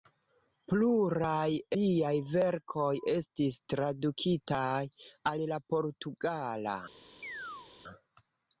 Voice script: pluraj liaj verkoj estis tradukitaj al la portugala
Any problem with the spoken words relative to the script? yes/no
no